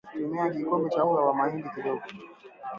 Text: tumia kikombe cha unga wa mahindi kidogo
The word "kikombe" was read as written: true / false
true